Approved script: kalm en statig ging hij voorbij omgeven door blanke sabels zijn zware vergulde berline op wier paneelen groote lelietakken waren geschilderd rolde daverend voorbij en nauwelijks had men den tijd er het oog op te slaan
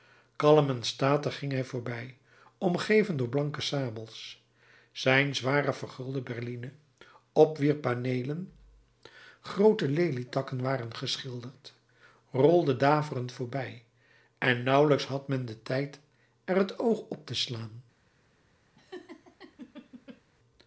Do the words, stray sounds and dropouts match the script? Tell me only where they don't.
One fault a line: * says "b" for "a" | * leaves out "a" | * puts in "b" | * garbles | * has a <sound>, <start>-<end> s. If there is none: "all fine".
* has a laugh, 18.8-20.2 s